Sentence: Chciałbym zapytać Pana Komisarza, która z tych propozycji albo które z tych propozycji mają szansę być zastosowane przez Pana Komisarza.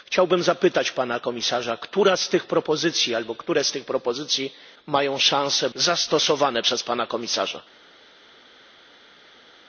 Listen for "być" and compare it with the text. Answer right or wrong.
wrong